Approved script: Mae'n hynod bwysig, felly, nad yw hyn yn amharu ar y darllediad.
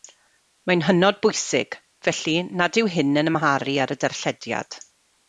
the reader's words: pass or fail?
pass